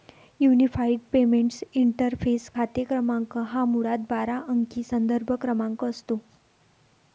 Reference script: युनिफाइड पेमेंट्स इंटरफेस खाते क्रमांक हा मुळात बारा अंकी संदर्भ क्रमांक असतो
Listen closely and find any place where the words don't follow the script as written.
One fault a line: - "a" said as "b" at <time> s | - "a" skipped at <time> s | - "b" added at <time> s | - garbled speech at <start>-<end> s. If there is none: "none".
none